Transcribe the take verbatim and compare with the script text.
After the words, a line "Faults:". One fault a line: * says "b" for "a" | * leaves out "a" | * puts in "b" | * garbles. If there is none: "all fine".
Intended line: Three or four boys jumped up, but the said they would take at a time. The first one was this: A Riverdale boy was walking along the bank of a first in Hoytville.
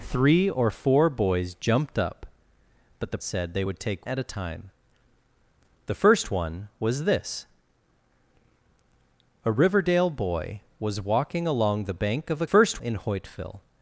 Three or four boys jumped up, but the said they would take at a time. The first one was this: A Riverdale boy was walking along the bank of a first in Hoytville.
Faults:
all fine